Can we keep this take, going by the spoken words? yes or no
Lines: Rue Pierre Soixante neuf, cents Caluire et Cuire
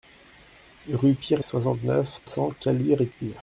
yes